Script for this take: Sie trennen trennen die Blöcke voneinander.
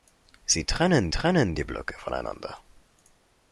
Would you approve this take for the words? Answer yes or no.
yes